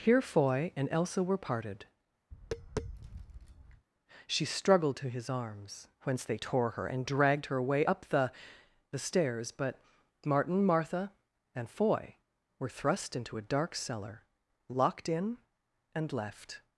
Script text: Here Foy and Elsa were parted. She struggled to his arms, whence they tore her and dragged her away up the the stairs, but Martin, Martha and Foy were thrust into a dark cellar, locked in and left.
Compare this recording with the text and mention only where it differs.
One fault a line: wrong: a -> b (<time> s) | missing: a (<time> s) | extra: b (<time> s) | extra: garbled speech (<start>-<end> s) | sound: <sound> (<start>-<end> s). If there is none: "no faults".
sound: tap (2.3-3.9 s)